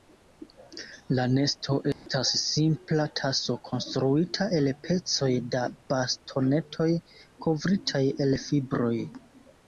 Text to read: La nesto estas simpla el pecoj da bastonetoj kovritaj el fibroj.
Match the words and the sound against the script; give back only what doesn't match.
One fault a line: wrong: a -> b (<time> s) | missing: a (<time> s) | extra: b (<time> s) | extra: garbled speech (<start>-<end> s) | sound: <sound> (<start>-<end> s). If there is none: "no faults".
sound: dropout (1.9-2.1 s)
extra: taso konstruita (3.2 s)